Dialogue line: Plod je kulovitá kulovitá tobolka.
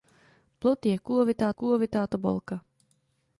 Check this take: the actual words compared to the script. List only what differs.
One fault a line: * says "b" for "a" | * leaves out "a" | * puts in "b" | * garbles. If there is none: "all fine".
all fine